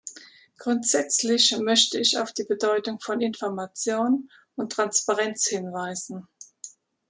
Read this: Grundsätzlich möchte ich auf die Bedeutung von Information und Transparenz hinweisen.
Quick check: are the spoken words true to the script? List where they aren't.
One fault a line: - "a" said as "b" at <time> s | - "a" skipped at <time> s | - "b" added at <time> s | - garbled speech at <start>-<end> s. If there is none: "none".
none